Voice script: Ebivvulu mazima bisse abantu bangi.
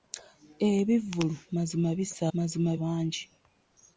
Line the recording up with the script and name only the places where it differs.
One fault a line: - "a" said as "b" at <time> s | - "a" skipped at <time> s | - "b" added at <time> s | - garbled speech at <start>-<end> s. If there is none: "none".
- "abantu" said as "mazima" at 2.4 s